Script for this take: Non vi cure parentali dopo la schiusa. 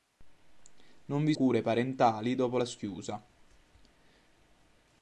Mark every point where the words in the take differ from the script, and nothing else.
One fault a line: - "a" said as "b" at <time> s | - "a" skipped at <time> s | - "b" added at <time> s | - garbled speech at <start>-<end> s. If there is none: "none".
none